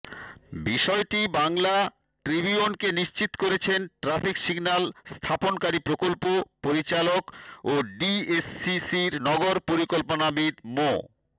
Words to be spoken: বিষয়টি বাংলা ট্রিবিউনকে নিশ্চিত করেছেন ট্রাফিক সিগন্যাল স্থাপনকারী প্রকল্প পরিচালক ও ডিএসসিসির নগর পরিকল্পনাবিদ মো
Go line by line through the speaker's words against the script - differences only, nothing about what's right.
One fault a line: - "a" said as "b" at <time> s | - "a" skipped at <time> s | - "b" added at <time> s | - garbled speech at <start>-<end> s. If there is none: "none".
none